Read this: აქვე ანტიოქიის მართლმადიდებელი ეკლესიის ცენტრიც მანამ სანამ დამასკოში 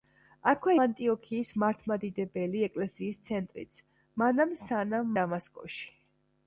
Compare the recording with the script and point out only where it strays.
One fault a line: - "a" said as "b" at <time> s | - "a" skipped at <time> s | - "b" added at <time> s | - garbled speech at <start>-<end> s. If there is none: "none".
none